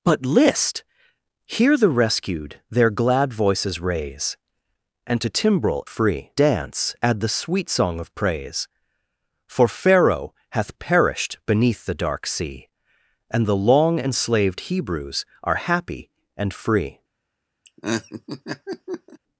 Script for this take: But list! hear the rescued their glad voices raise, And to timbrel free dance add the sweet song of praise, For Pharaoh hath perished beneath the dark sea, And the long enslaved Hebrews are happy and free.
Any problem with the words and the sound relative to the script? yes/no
yes